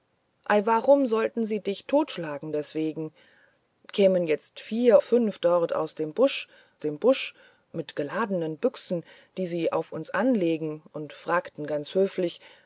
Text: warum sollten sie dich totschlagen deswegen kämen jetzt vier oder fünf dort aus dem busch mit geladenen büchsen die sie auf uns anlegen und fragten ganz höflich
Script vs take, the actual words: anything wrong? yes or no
yes